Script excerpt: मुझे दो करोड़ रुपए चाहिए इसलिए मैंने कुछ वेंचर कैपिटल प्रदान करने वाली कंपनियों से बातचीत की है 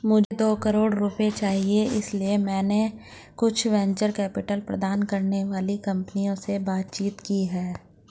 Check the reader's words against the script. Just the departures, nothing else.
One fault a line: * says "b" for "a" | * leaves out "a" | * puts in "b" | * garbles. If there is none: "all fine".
all fine